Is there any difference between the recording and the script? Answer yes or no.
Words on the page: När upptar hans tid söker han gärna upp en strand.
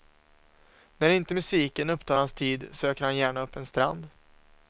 yes